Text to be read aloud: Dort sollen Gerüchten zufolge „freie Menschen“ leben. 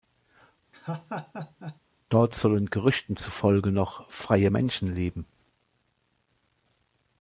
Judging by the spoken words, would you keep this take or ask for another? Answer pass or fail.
fail